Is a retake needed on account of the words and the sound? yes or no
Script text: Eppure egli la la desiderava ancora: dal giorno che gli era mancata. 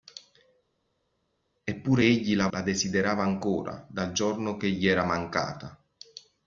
no